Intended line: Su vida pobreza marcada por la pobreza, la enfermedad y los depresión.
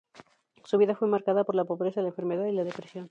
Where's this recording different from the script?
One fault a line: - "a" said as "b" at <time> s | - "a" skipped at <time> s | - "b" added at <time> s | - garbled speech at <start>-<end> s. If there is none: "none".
- "pobreza" said as "fue" at 0.9 s
- "los" said as "la" at 2.5 s